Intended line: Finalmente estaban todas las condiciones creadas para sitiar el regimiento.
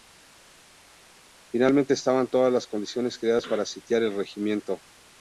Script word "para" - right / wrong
right